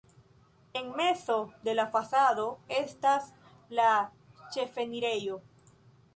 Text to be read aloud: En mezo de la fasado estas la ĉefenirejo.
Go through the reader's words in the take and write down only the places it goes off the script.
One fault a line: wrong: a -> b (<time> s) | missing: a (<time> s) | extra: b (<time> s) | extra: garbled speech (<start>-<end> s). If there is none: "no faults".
no faults